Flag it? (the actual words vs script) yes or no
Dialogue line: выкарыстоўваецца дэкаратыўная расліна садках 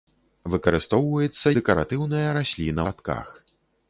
no